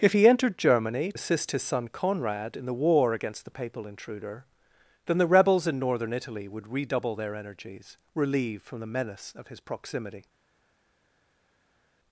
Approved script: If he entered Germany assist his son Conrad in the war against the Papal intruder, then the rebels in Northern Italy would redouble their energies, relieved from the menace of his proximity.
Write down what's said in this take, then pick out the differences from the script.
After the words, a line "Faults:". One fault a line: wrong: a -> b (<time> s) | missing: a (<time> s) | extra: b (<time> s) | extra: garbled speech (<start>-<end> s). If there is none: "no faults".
If he entered Germany assist his son Conrad in the war against the Papal intruder, then the rebels in Northern Italy would redouble their energies, relieved from the menace of his proximity.
Faults:
no faults